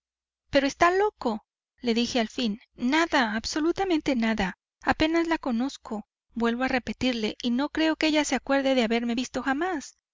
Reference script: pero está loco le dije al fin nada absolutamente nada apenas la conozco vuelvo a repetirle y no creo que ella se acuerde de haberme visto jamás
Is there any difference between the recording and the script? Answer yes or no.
no